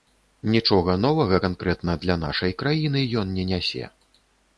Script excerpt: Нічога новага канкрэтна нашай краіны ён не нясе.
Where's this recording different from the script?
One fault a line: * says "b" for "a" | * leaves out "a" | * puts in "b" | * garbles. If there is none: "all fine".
* puts in "для"